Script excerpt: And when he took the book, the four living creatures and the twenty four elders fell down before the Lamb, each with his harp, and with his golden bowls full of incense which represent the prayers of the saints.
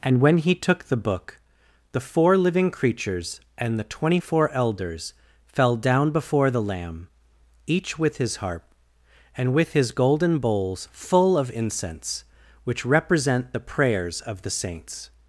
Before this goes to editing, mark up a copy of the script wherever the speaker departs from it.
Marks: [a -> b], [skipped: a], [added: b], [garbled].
And when he took the book, the four living creatures and the twenty four elders fell down before the Lamb, each with his harp, and with his golden bowls full of incense which represent the prayers of the saints.